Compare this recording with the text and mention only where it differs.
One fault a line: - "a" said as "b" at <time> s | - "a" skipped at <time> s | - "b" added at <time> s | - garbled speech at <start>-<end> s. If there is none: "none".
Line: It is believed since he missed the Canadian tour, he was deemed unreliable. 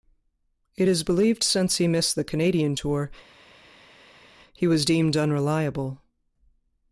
none